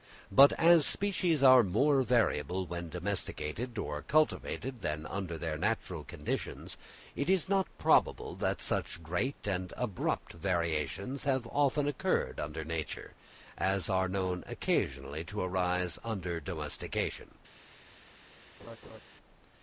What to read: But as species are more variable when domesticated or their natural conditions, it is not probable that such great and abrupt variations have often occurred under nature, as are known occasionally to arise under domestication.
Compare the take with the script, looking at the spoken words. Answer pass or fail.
fail